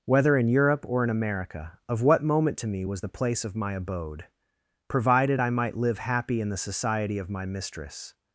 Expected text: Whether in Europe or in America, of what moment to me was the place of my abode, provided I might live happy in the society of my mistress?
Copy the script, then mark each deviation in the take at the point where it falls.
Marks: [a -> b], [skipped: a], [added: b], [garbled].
Whether in Europe or in America, of what moment to me was the place of my abode, provided I might live happy in the society of my mistress?